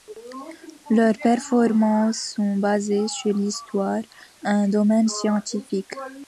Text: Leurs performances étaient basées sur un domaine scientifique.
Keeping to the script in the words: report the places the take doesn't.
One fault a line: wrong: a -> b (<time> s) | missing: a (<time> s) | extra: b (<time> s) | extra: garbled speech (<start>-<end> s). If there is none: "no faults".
wrong: étaient -> sont (2.4 s)
extra: l'histoire (3.4 s)